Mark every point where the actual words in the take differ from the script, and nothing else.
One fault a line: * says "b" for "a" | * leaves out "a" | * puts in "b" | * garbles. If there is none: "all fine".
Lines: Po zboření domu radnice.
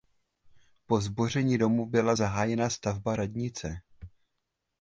* puts in "byla zahájena stavba"